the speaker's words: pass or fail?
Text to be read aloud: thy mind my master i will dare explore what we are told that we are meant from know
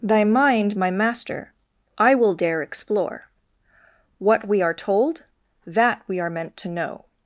fail